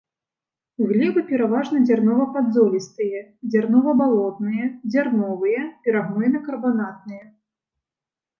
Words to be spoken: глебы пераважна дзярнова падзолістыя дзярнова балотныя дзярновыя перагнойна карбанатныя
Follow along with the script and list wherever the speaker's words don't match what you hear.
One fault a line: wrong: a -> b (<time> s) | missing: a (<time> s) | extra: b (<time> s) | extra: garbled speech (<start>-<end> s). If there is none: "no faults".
no faults